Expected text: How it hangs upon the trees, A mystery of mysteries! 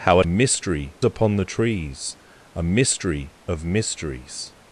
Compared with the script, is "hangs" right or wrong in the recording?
wrong